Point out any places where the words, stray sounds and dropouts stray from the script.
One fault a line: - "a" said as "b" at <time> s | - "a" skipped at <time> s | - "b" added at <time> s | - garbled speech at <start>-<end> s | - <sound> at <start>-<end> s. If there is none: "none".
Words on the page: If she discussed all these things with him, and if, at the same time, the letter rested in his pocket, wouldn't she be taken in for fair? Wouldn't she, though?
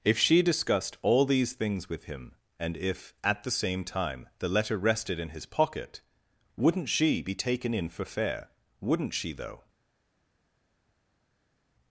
none